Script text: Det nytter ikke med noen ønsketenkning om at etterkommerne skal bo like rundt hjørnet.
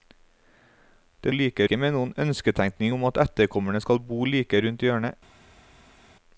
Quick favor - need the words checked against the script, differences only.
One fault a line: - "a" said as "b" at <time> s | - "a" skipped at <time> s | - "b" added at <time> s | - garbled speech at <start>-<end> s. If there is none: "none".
- "nytter" said as "like" at 1.3 s